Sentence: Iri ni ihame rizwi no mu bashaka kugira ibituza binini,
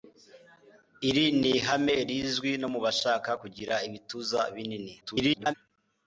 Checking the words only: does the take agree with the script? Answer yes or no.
no